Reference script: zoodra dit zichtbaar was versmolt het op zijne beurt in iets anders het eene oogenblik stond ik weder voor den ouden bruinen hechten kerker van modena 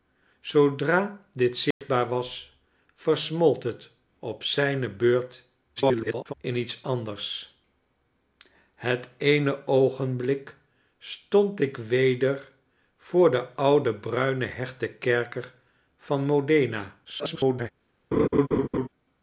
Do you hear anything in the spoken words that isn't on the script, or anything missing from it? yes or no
yes